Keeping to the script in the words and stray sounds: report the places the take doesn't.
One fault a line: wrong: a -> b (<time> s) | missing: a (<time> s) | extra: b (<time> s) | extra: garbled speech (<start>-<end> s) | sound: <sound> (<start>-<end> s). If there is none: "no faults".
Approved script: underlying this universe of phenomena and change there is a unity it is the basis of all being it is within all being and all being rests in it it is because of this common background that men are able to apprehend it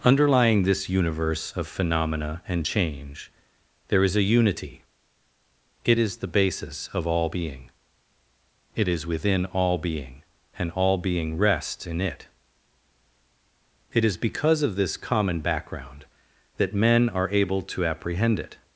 no faults